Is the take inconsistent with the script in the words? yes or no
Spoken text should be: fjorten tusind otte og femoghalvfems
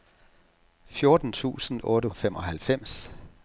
no